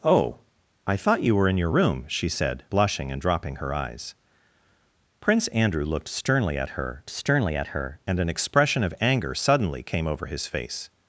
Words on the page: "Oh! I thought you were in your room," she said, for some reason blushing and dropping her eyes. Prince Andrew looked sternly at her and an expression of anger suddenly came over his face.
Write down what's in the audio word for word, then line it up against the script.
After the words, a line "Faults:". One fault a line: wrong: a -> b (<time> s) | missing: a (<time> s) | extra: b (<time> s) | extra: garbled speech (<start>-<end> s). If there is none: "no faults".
"Oh! I thought you were in your room," she said, blushing and dropping her eyes. Prince Andrew looked sternly at her sternly at her and an expression of anger suddenly came over his face.
Faults:
missing: for some reason (2.6 s)
extra: sternly at her (7.1 s)